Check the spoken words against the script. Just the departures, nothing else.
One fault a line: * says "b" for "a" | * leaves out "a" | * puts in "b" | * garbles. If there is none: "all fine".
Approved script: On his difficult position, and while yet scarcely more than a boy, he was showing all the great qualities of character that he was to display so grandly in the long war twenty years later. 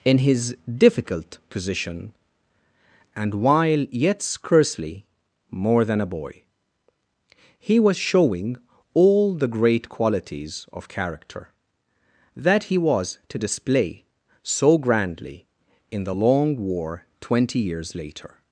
* says "In" for "On"